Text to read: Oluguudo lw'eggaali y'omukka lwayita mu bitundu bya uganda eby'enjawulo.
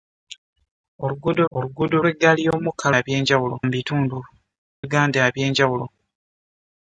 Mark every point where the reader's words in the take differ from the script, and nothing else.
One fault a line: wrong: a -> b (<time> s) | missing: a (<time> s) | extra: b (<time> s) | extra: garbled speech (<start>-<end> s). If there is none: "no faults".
extra: oluguudo (1.6 s)
wrong: lwayita -> eby'enjawulo (3.0 s)
missing: bya (4.2 s)